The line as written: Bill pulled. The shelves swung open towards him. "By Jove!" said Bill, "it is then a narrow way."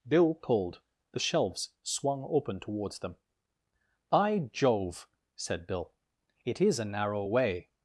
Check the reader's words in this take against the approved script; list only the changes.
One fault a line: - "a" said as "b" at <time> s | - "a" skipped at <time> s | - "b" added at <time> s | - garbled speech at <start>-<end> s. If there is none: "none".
- "him" said as "them" at 3.0 s
- "then" skipped at 6.8 s